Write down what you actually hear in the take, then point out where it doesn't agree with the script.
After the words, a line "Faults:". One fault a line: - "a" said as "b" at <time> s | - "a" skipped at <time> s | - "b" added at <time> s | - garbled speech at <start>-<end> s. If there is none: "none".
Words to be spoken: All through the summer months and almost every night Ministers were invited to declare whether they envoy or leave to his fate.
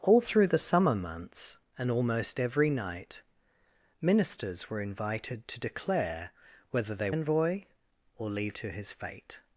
All through the summer months and almost every night Ministers were invited to declare whether they envoy or leave to his fate.
Faults:
none